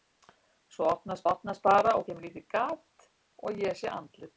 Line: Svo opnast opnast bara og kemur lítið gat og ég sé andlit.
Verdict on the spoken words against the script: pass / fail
pass